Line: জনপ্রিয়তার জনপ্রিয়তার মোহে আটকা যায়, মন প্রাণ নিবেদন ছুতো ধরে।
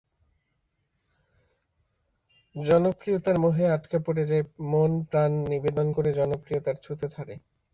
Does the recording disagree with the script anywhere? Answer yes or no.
yes